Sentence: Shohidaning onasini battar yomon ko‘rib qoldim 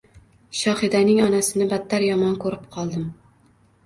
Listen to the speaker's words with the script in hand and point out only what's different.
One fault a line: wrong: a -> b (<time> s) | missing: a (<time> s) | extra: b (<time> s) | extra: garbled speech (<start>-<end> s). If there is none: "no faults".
no faults